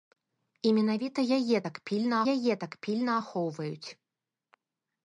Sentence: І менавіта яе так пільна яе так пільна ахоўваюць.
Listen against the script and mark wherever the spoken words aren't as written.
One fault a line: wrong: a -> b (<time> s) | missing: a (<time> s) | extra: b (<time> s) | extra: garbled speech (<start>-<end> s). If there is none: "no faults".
no faults